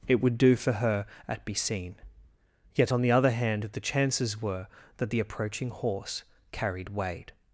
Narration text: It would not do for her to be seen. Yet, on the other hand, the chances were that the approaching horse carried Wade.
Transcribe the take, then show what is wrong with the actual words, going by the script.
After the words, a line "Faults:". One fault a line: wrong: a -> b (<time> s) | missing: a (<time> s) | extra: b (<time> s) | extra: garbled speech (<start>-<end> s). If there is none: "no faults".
It would do for her at be seen. Yet, on the other hand, the chances were that the approaching horse carried Wade.
Faults:
missing: not (0.4 s)
wrong: to -> at (1.3 s)